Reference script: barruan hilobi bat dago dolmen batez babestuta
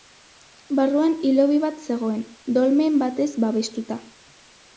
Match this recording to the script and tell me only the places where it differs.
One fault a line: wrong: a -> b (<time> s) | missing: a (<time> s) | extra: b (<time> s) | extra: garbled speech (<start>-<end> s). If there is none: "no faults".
wrong: dago -> zegoen (1.9 s)